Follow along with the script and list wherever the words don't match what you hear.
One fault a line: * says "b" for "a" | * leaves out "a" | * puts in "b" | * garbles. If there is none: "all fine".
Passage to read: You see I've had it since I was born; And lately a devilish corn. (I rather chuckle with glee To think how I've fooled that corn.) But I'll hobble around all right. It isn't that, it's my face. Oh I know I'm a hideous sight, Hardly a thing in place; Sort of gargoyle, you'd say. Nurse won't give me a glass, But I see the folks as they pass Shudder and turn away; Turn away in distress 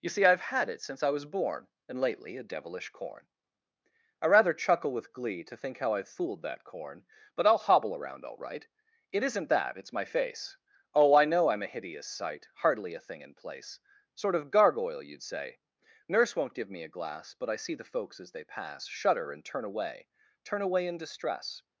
all fine